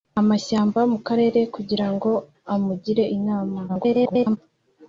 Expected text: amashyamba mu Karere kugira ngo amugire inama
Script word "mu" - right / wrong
right